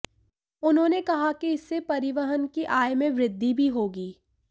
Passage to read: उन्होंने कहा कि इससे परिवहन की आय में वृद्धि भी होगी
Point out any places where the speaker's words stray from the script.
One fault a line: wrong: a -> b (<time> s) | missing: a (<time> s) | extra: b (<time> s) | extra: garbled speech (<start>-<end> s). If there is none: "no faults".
no faults